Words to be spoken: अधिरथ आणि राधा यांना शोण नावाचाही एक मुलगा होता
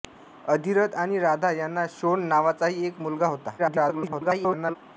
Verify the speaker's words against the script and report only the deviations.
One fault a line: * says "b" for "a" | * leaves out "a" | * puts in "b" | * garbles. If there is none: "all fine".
* garbles